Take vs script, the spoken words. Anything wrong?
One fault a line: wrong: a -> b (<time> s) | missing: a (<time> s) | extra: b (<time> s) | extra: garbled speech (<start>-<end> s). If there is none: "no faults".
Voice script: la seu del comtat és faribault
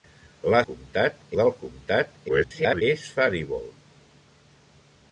wrong: seu -> comtat (0.7 s)
extra: garbled speech (2.3-2.8 s)